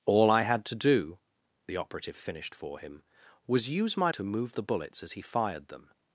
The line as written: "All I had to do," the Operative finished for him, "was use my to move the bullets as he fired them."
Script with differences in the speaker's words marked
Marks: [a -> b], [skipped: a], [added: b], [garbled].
"All I had to do," the Operative finished for him, "was use my to move the bullets as he fired them."